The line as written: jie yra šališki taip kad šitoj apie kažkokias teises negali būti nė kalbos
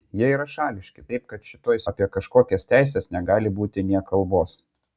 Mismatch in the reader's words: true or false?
false